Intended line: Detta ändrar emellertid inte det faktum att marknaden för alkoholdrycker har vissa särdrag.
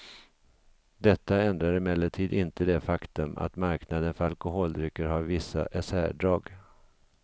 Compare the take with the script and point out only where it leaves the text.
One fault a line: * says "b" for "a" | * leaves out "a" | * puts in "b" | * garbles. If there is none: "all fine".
all fine